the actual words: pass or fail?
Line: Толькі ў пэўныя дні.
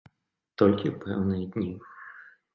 pass